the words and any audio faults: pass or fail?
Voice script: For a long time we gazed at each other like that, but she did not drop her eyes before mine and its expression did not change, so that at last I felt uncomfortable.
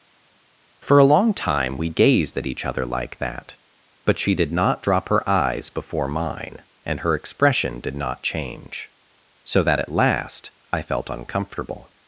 fail